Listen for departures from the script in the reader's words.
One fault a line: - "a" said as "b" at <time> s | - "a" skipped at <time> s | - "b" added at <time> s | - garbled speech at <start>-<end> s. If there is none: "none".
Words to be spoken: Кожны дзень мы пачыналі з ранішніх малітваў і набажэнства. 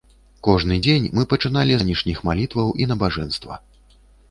- "з" skipped at 1.7 s